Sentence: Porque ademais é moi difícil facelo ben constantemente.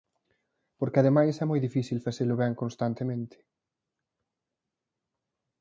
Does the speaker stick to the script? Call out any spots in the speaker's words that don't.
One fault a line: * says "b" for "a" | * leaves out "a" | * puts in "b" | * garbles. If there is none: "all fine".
all fine